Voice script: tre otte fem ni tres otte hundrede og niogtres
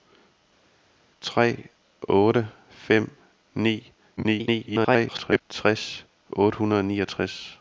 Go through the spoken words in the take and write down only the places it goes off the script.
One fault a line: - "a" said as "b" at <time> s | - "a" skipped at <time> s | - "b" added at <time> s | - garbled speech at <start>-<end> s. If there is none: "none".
- garbled speech at 4.2-5.4 s